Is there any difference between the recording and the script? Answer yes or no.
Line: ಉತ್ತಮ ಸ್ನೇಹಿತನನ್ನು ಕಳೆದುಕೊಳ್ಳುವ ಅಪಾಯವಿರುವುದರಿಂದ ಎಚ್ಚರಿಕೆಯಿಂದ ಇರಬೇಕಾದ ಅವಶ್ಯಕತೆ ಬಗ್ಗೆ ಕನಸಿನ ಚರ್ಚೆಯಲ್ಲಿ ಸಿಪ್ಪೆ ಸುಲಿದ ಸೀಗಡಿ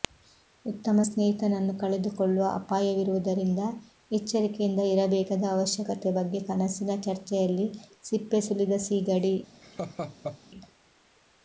no